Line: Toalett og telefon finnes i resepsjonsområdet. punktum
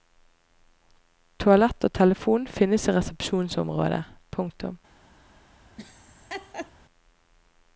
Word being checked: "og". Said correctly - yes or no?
yes